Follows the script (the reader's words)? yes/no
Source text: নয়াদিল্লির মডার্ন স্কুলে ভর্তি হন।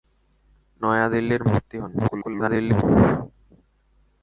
no